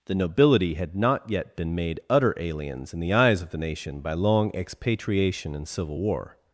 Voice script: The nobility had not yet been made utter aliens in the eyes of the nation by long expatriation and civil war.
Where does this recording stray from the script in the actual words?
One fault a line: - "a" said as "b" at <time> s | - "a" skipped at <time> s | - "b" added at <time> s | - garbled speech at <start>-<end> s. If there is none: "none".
none